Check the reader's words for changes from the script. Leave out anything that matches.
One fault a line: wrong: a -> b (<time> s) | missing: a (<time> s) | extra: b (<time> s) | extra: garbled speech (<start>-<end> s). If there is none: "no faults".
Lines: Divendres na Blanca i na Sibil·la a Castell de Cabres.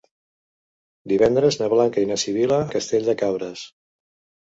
no faults